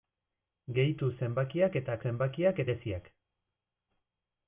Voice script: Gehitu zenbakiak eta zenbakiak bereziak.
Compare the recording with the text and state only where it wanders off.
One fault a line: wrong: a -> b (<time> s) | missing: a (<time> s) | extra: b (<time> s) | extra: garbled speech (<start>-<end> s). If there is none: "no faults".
no faults